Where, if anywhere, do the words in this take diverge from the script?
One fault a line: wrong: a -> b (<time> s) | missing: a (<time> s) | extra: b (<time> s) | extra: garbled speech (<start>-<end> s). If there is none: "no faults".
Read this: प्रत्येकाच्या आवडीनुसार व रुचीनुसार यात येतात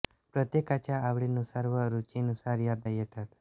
no faults